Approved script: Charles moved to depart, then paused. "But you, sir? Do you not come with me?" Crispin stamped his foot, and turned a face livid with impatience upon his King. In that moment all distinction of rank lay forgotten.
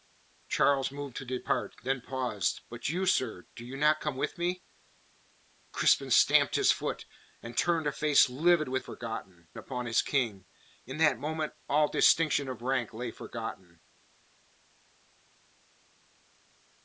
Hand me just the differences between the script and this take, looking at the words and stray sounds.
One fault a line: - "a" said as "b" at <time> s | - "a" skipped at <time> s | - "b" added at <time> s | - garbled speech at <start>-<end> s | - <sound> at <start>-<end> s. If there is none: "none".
- "impatience" said as "forgotten" at 8.8 s